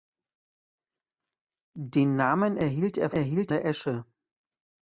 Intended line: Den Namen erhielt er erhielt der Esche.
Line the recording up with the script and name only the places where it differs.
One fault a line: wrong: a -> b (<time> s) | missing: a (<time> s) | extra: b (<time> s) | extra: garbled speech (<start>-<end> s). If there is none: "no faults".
no faults